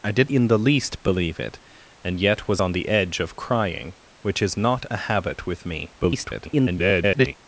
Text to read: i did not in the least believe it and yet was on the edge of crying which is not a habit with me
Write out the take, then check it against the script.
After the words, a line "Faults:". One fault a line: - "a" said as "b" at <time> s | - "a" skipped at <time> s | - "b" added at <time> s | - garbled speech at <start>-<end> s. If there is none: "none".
i did in the least believe it and yet was on the edge of crying which is not a habit with me [garbled]
Faults:
- "not" skipped at 0.3 s
- garbled speech at 6.0-7.3 s